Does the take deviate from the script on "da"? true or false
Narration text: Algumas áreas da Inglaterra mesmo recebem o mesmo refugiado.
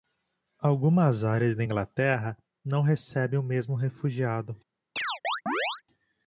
false